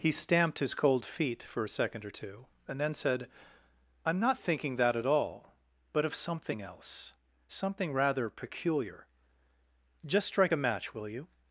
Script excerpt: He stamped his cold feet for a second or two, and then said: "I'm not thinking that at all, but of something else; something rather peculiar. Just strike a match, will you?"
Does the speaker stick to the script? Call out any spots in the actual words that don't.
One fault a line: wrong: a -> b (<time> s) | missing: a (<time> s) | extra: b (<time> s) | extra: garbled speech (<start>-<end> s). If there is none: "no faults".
no faults